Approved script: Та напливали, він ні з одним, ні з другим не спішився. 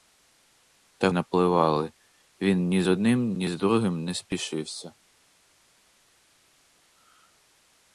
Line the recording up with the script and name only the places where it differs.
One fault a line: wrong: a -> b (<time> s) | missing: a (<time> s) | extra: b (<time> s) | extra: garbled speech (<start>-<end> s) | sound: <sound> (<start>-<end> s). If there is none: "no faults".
no faults